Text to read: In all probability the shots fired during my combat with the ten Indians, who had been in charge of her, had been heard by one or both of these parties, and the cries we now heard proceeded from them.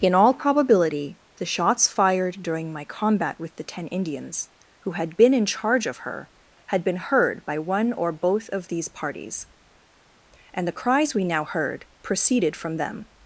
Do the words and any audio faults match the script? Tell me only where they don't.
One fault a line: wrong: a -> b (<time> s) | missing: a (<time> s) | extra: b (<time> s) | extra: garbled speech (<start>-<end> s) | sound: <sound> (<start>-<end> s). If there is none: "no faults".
no faults